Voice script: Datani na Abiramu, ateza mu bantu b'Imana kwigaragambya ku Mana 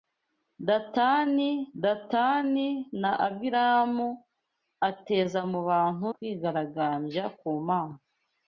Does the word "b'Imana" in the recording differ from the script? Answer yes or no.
yes